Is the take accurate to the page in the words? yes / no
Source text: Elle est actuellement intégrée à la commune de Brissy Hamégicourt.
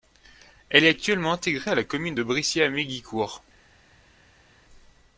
yes